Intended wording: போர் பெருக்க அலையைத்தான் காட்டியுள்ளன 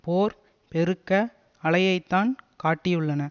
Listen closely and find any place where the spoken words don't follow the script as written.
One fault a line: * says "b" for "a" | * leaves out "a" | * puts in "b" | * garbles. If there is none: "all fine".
all fine